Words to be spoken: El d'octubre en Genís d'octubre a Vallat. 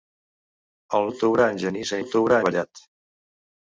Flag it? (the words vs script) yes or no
no